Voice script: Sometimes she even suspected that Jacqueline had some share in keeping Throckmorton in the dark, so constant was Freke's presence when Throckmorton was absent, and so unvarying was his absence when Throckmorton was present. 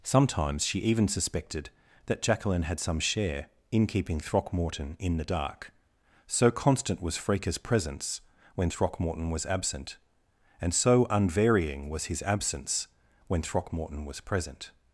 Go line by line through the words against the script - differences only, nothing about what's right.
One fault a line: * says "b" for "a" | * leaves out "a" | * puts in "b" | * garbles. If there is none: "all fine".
all fine